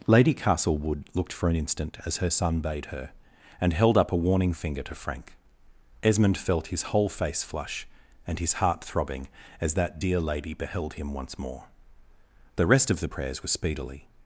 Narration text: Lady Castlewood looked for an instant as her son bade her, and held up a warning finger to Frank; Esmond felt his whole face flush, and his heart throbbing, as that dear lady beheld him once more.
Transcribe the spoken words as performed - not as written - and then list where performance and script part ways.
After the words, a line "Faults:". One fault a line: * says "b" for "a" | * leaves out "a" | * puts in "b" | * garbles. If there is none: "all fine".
Lady Castlewood looked for an instant as her son bade her, and held up a warning finger to Frank; Esmond felt his whole face flush, and his heart throbbing, as that dear lady beheld him once more. The rest of the prayers were speedily
Faults:
* puts in "The rest of the prayers were speedily"